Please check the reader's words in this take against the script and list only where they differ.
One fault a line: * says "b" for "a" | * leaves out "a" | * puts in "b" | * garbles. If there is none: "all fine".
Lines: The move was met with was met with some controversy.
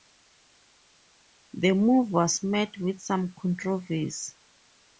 * leaves out "was met with"